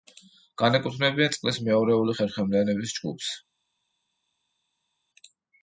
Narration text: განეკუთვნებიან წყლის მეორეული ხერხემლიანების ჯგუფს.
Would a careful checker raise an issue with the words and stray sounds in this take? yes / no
no